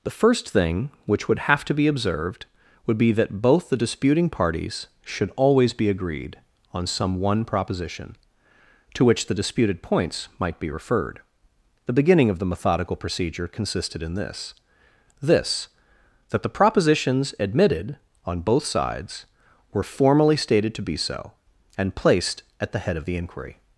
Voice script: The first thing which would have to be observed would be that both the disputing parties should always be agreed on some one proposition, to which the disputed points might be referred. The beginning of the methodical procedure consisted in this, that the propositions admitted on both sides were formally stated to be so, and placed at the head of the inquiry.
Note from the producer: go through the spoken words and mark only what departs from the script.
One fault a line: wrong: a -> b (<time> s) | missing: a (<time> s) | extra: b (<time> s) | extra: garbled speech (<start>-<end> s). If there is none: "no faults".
extra: this (15.2 s)